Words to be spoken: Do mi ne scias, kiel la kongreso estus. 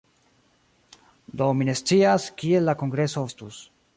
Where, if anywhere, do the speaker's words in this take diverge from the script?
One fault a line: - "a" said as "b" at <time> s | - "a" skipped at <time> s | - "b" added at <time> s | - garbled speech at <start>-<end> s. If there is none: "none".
none